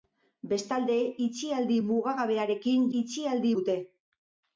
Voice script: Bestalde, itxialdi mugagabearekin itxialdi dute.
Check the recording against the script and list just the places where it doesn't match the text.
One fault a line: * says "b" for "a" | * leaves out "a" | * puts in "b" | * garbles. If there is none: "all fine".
all fine